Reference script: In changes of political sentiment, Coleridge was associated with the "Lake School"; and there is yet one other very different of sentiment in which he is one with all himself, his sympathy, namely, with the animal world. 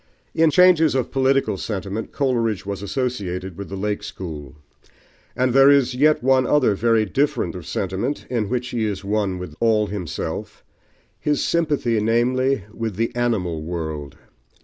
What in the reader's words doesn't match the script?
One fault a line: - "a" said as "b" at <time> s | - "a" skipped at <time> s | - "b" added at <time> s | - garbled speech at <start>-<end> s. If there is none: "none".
none